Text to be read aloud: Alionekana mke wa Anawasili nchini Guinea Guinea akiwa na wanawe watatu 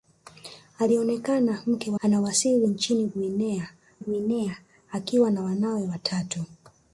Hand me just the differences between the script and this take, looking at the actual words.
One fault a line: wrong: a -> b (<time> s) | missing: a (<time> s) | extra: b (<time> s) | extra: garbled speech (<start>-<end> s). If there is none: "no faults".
no faults